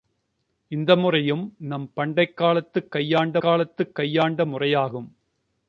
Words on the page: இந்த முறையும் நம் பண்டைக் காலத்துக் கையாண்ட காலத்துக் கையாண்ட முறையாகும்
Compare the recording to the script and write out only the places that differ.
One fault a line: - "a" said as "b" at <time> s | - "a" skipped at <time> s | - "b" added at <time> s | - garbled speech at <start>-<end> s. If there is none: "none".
none